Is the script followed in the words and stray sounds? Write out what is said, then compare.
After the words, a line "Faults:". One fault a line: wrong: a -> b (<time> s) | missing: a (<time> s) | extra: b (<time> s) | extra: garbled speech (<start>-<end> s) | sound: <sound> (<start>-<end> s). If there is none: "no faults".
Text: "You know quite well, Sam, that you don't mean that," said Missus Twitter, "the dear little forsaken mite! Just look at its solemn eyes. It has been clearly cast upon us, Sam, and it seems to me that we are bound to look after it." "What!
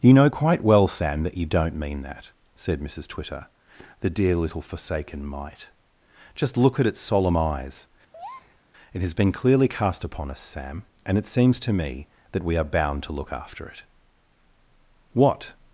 "You know quite well, Sam, that you don't mean that," said Missus Twitter, "the dear little forsaken mite! Just look at its solemn eyes. It has been clearly cast upon us, Sam, and it seems to me that we are bound to look after it." "What!
Faults:
sound: breath (8.1-8.6 s)